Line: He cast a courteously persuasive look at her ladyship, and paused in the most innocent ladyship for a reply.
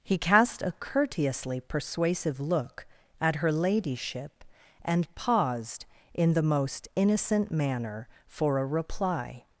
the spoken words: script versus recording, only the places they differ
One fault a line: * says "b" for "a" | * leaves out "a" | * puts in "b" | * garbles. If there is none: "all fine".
* says "manner" for "ladyship"